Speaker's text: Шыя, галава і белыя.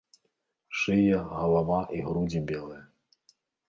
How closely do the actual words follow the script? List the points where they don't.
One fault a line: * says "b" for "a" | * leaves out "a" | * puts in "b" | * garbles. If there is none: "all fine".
* puts in "грудзі"